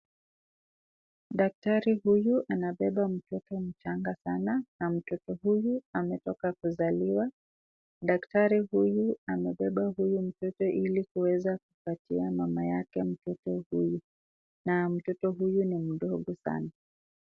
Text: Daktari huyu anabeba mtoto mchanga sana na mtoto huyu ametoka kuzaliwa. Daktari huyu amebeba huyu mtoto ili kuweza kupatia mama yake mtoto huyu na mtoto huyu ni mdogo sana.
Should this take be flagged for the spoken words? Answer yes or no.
no